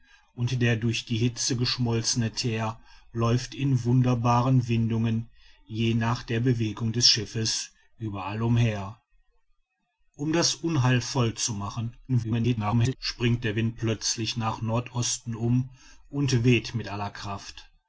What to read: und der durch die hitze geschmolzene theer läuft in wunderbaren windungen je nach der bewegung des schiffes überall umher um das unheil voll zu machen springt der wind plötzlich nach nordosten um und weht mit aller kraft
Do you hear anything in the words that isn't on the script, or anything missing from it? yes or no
yes